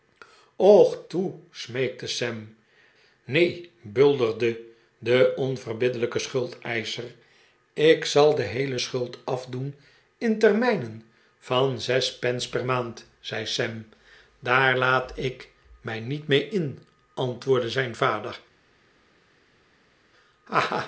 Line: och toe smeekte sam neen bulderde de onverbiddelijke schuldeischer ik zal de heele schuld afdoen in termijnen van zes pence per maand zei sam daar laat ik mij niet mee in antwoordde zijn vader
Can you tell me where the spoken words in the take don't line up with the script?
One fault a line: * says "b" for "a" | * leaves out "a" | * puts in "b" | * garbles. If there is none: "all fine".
all fine